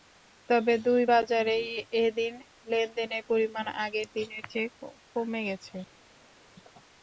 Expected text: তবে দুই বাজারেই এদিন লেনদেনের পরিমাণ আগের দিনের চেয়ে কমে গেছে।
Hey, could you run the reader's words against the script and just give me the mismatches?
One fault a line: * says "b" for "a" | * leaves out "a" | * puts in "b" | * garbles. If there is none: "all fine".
all fine